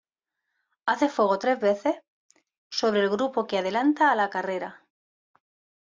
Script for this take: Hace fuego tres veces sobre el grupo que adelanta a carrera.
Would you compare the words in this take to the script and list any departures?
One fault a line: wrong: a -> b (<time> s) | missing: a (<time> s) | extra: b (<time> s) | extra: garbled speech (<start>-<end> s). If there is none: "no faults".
extra: la (4.2 s)